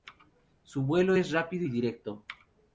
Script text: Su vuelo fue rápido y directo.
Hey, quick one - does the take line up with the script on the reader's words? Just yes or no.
no